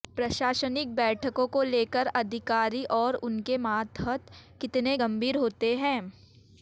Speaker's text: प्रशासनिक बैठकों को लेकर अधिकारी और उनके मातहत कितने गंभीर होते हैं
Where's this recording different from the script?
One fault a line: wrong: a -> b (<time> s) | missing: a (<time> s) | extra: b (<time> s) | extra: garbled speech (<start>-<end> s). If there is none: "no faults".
no faults